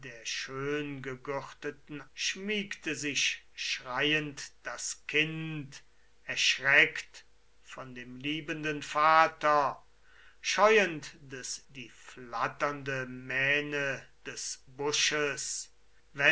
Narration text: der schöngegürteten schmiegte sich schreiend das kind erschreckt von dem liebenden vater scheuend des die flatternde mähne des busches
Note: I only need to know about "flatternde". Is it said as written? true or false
true